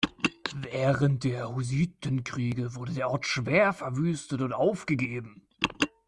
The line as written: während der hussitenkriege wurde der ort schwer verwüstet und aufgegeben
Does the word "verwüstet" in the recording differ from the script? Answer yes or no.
no